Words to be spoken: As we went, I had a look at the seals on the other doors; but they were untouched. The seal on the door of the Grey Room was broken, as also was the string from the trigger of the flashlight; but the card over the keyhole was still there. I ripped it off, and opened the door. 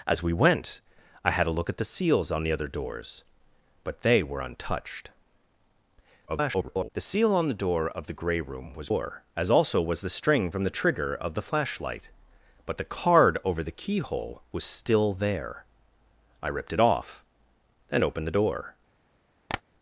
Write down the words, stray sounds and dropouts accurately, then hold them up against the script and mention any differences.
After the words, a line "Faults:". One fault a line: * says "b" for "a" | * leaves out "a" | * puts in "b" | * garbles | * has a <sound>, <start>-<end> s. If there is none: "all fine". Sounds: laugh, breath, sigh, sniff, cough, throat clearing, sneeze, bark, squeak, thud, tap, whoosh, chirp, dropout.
As we went, I had a look at the seals on the other doors; but they were untouched. [garbled] The seal on the door of the Grey Room was door, as also was the string from the trigger of the flashlight; but the card over the keyhole was still there. I ripped it off, and opened the door.
Faults:
* garbles
* says "door" for "broken"
* has a tap, 19.5-19.6 s